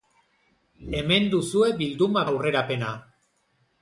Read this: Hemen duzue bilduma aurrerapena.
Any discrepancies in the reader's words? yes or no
no